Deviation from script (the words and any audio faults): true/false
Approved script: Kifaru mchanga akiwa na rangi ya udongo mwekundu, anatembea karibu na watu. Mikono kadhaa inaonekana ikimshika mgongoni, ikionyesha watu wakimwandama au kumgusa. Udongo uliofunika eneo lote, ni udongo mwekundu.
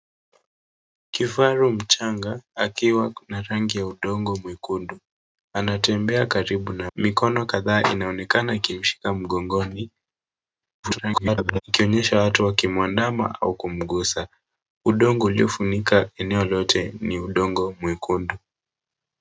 true